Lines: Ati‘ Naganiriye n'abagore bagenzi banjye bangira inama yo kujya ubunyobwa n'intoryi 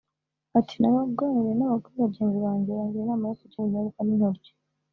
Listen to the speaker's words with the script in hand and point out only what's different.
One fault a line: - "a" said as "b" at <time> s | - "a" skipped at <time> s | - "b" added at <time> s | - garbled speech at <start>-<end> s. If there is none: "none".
none